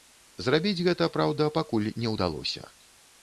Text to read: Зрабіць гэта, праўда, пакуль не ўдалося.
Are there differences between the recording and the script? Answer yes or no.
no